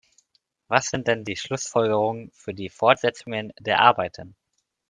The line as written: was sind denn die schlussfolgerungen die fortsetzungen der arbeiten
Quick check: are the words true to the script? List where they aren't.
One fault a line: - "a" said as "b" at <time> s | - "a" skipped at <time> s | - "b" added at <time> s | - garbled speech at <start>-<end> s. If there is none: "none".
- "für" added at 2.4 s